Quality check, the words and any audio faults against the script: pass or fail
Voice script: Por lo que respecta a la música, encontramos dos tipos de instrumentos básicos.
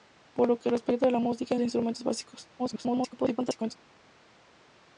fail